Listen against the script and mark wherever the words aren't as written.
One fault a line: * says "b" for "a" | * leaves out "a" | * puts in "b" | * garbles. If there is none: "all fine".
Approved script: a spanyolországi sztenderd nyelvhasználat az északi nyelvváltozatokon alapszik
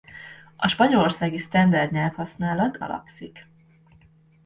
* leaves out "az északi nyelvváltozatokon"